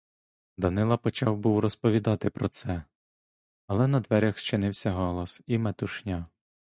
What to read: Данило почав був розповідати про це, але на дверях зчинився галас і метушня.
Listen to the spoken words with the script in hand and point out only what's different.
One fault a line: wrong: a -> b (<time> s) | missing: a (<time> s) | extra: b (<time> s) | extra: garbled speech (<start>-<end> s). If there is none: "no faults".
no faults